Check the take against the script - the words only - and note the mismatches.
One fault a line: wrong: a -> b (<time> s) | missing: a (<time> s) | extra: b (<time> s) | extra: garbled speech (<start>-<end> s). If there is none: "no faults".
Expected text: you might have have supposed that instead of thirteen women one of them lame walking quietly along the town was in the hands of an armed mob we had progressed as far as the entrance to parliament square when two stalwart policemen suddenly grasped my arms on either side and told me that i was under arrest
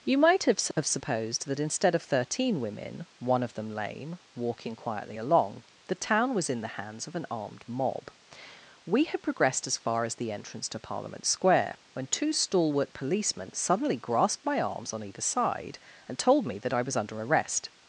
no faults